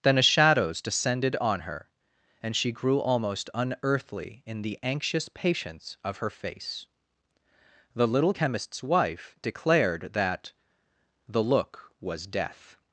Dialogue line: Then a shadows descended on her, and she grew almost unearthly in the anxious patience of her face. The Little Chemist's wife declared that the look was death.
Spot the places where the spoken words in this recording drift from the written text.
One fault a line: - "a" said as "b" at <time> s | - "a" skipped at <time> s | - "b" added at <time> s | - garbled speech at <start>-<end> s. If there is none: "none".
none